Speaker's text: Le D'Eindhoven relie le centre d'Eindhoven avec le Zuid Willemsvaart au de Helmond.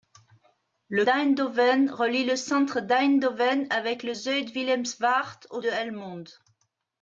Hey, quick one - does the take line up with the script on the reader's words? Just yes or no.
yes